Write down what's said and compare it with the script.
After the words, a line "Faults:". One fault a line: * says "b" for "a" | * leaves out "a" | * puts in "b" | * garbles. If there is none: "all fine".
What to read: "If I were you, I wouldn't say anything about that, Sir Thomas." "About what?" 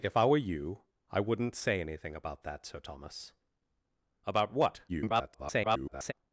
"If I were you, I wouldn't say anything about that, Sir Thomas." "About what?" [garbled]
Faults:
* garbles